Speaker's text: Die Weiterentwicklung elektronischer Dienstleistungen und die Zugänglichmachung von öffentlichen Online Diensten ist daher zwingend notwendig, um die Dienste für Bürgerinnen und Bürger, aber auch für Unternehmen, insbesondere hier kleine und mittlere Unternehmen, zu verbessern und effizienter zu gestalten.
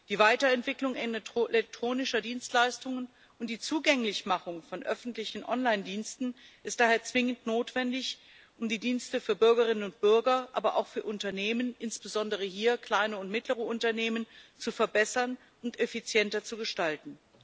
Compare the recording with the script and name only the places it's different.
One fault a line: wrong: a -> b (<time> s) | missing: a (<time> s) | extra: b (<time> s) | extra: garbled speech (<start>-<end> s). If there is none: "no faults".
no faults